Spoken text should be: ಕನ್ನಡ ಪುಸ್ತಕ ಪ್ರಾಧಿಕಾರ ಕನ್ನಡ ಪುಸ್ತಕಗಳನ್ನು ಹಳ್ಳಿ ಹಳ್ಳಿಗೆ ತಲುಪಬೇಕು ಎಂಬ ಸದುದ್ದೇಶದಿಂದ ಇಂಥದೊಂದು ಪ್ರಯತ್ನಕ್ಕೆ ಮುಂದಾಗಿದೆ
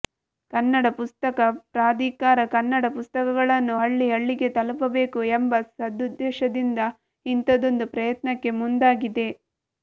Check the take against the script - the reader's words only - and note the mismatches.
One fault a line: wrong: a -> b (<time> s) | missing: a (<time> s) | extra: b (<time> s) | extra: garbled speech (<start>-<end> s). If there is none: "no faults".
no faults